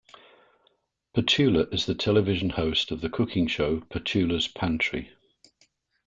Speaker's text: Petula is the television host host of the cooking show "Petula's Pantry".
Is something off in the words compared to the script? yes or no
yes